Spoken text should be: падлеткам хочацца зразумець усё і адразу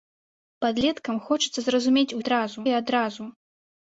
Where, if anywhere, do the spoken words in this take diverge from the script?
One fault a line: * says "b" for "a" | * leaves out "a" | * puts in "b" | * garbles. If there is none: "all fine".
* says "адразу" for "усё"